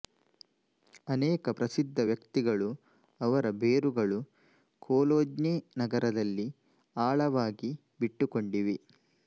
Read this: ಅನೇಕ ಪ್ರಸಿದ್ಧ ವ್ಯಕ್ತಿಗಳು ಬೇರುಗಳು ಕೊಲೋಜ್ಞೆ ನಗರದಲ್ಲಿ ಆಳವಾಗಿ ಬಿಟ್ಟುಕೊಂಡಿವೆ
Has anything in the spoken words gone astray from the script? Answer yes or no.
yes